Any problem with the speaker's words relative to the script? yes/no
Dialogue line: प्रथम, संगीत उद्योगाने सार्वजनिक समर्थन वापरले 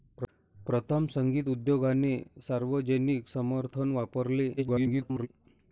yes